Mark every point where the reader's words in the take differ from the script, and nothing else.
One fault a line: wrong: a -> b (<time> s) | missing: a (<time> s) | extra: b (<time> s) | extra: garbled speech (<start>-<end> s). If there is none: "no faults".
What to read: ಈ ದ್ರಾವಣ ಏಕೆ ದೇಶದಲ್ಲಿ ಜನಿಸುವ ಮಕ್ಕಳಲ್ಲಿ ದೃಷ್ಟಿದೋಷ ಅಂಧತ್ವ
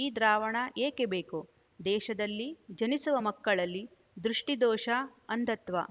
extra: ಬೇಕು (1.1 s)